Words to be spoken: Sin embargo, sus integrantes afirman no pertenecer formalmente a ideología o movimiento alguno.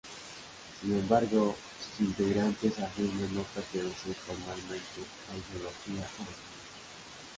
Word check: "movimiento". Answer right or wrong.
wrong